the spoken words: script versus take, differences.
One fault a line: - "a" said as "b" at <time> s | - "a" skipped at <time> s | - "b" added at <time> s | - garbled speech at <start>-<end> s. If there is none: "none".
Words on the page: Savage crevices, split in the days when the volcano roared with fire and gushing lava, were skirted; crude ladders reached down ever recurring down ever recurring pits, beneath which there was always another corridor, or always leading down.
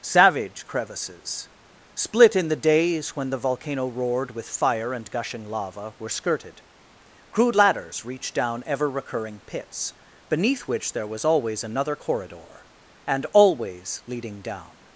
- "down ever recurring" skipped at 9.4 s
- "or" said as "and" at 13.1 s